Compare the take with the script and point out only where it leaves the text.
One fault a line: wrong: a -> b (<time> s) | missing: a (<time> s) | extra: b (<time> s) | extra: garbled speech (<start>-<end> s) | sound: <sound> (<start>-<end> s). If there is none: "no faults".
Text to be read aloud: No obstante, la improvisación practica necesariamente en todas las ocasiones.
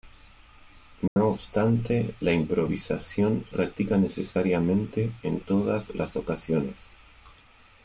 sound: dropout (1.1-1.2 s)